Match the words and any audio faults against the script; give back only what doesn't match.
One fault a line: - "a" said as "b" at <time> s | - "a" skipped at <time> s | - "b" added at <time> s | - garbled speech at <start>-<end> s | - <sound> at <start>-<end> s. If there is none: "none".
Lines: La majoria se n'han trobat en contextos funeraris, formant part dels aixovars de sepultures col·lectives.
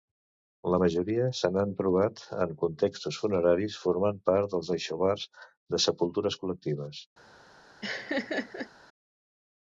- laugh at 7.8-8.7 s